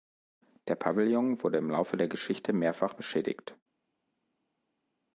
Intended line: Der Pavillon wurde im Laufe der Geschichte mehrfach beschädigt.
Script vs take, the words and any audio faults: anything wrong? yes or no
no